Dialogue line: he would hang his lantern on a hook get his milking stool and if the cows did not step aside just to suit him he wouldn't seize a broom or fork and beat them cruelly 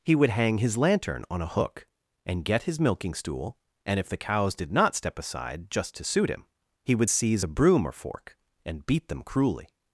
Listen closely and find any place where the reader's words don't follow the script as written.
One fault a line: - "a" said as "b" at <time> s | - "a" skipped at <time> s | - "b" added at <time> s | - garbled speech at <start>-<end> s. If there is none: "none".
- "and" added at 2.2 s
- "wouldn't" said as "would" at 7.0 s